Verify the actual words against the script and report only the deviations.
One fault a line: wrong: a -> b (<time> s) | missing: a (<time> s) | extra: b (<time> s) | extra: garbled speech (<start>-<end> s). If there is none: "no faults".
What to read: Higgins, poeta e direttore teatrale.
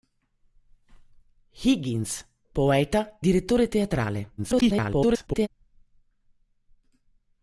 missing: e (3.2 s)
extra: garbled speech (4.4-5.5 s)